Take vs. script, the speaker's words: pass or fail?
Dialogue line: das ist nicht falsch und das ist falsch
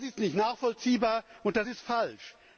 fail